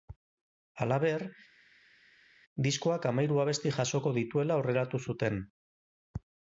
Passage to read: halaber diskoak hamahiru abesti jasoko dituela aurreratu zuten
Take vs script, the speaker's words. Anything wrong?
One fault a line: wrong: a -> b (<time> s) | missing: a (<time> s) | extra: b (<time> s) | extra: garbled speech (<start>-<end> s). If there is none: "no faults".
no faults